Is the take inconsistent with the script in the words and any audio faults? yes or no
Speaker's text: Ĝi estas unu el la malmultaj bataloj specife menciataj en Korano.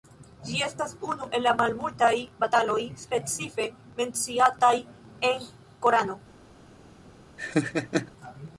yes